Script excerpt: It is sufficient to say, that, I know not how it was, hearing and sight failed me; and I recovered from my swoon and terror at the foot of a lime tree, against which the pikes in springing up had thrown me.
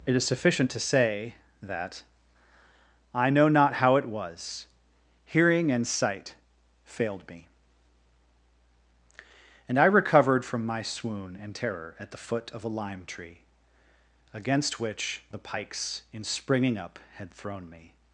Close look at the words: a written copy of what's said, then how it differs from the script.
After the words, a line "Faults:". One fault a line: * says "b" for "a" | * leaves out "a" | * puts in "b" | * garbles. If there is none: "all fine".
It is sufficient to say, that, I know not how it was, hearing and sight failed me; and I recovered from my swoon and terror at the foot of a lime tree, against which the pikes in springing up had thrown me.
Faults:
all fine